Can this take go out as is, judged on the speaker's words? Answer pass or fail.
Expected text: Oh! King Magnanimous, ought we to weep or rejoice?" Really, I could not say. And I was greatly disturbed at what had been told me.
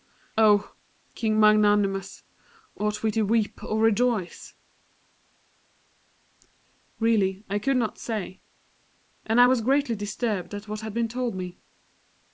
pass